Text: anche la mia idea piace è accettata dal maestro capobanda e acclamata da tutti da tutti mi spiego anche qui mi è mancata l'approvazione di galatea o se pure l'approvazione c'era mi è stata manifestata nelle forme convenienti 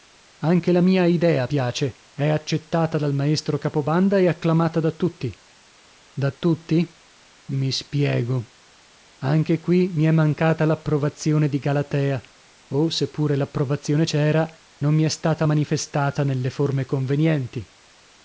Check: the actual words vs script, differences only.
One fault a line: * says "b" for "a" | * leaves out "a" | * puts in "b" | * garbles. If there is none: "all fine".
* puts in "non"